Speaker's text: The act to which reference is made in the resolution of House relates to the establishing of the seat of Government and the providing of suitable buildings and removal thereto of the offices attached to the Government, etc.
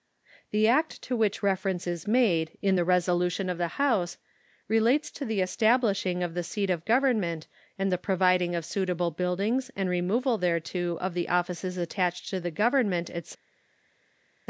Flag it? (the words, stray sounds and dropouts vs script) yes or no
yes